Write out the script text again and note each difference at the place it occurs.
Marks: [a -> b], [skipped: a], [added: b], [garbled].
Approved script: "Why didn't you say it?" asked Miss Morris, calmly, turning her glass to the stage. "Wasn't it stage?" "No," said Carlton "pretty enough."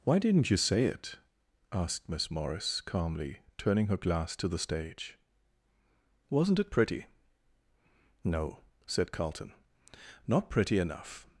"Why didn't you say it?" asked Miss Morris, calmly, turning her glass to the stage. "Wasn't it [stage?" -> pretty] "No," said Carlton [added: not] "pretty enough."